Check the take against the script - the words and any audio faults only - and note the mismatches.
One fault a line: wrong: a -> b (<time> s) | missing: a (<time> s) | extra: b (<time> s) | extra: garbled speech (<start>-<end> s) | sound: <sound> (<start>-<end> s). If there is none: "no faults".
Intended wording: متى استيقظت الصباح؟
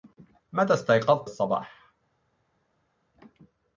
no faults